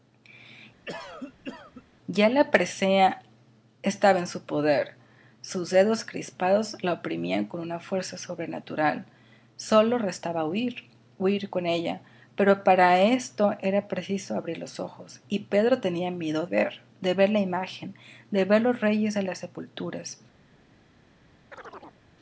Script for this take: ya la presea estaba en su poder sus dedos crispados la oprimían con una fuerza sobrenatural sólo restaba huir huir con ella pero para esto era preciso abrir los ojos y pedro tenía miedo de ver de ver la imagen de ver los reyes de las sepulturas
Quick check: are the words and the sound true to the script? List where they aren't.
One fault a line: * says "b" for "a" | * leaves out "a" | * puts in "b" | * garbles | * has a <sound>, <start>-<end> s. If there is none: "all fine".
* has a cough, 0.8-1.8 s
* leaves out "de"
* has a chirp, 21.5-22.0 s